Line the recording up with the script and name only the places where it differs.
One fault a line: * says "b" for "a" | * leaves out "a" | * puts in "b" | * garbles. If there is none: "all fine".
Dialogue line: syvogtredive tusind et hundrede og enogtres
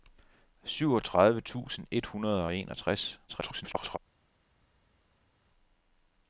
* garbles